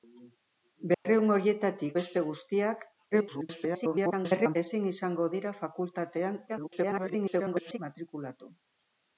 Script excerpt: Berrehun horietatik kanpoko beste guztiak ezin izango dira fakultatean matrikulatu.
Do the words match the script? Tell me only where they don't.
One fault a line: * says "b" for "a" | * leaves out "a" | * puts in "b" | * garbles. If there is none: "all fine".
* leaves out "kanpoko"
* garbles
* garbles